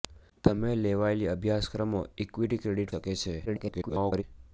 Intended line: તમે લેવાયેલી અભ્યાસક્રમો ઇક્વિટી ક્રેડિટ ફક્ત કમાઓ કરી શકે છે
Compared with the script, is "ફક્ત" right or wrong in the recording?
wrong